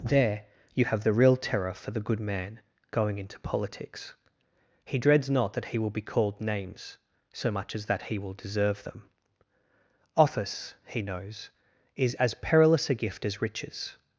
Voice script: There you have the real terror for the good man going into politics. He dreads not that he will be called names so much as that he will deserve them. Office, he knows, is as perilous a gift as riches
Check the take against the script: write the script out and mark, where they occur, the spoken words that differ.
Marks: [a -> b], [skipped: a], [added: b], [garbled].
There you have the real terror for the good man going into politics. He dreads not that he will be called names so much as that he will deserve them. Office, he knows, is as perilous a gift as riches